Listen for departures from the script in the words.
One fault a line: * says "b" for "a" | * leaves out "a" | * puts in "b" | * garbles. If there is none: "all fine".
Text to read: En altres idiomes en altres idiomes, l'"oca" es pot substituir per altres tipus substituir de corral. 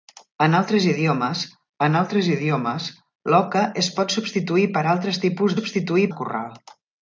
all fine